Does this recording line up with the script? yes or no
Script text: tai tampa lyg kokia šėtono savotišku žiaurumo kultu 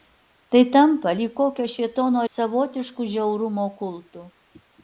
yes